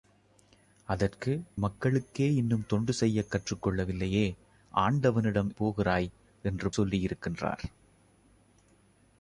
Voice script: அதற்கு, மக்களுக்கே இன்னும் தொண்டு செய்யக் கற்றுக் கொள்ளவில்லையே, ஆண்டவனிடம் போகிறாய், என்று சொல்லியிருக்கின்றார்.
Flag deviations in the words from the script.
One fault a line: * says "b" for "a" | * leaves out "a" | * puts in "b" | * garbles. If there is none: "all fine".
all fine